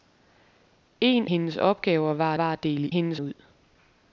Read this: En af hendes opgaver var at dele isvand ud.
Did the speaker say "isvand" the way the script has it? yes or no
no